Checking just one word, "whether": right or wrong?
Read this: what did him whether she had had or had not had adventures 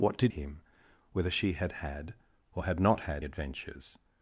right